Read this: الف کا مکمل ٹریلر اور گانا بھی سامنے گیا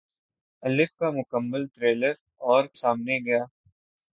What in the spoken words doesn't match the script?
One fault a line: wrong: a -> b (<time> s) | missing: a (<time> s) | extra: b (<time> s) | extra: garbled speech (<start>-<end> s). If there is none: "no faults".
missing: گانا بھی (2.6 s)